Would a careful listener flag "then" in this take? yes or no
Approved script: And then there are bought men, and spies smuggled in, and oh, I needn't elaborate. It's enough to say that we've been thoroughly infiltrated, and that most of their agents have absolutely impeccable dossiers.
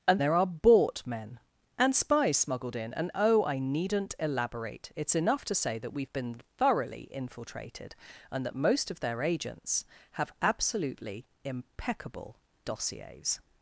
yes